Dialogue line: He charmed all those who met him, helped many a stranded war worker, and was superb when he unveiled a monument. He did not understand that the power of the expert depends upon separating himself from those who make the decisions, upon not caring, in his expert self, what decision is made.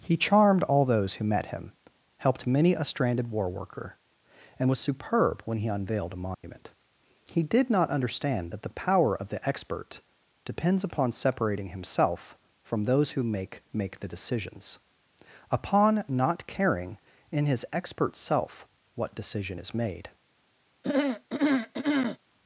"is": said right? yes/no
yes